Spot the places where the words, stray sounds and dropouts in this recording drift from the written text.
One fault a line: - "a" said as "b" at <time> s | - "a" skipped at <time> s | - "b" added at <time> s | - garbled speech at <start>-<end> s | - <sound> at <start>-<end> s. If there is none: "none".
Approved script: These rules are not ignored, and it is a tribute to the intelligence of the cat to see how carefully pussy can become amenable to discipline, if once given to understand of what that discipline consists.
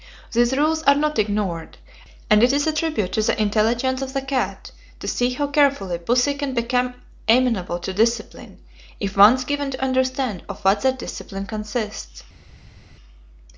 none